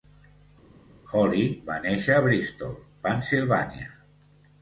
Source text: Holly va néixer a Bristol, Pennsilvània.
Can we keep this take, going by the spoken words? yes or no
yes